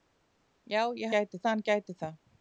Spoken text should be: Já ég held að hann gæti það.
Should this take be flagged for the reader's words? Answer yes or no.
yes